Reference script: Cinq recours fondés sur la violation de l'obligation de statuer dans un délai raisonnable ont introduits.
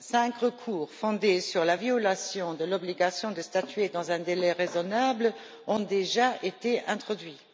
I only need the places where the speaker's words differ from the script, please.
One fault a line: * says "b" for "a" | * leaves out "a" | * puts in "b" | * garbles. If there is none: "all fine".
* puts in "déjà été"